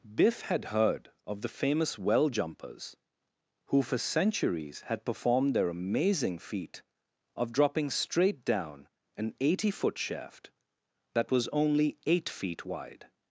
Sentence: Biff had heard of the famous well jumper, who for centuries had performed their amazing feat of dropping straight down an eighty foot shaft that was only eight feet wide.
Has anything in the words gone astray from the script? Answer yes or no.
yes